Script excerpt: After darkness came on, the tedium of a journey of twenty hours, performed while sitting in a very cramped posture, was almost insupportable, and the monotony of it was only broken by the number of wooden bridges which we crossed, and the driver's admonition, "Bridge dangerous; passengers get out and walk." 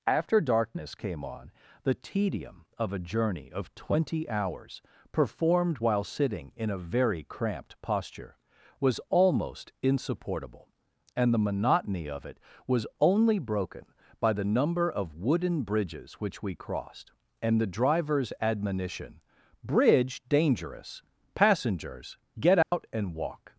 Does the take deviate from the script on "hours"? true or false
false